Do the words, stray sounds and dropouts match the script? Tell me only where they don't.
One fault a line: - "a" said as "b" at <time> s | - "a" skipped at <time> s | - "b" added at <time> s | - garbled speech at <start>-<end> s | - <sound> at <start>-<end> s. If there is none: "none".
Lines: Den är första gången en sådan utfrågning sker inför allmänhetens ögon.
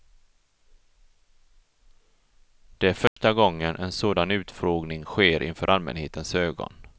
- "Den" said as "Det" at 2.8 s
- dropout at 3.1-3.2 s